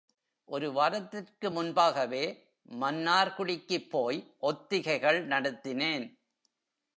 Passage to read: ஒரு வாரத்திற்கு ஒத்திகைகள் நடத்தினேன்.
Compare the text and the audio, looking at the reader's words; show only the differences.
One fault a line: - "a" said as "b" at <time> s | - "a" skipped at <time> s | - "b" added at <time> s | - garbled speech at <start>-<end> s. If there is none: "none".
- "முன்பாகவே மன்னார்குடிக்குப் போய்" added at 1.5 s